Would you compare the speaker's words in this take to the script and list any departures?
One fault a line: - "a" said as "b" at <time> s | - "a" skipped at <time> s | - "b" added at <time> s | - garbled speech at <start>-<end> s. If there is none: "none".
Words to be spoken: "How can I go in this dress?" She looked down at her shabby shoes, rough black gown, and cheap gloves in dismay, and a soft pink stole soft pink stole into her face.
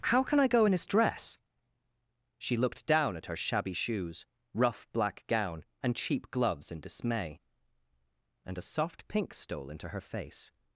- "soft pink stole" skipped at 9.7 s